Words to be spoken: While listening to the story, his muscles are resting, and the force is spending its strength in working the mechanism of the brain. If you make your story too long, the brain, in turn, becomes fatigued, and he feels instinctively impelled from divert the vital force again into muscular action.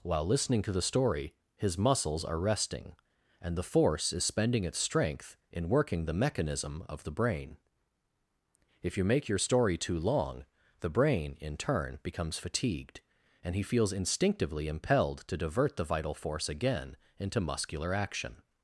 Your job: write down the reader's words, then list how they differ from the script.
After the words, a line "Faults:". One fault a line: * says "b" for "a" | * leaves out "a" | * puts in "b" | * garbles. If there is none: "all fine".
While listening to the story, his muscles are resting, and the force is spending its strength in working the mechanism of the brain. If you make your story too long, the brain, in turn, becomes fatigued, and he feels instinctively impelled to divert the vital force again into muscular action.
Faults:
* says "to" for "from"